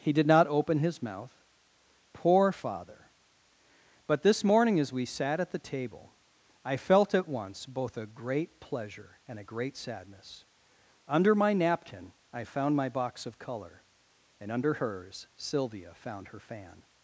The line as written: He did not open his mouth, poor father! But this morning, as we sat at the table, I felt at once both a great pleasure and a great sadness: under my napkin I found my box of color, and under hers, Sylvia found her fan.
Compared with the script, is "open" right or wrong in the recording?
right